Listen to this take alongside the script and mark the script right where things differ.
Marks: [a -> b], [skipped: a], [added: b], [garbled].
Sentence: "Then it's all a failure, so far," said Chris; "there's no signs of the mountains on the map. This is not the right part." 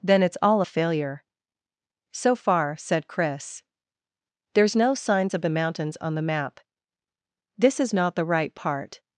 "Then it's all a failure, so far," said Chris; "there's no signs of the mountains on the map. This is not the right part."